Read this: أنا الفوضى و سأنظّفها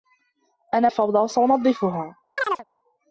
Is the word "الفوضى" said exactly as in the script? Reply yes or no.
yes